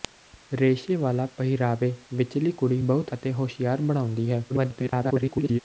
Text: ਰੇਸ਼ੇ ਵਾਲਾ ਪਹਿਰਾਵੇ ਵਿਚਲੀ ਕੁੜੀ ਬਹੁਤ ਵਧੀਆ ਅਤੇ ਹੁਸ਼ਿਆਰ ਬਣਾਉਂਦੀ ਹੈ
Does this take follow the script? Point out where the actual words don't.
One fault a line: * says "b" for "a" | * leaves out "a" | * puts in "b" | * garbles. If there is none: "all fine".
* leaves out "ਵਧੀਆ"
* garbles